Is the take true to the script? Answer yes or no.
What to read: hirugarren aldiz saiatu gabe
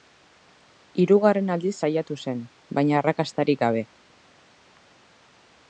no